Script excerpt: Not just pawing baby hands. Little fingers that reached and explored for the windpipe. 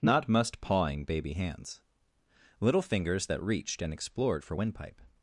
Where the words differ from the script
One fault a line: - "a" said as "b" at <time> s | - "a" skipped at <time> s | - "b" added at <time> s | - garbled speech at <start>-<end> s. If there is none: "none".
- "just" said as "must" at 0.3 s
- "the" skipped at 4.5 s